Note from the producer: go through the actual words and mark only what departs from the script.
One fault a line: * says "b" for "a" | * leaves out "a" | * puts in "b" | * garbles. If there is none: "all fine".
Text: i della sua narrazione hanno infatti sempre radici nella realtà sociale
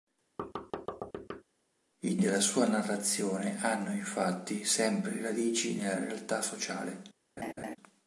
all fine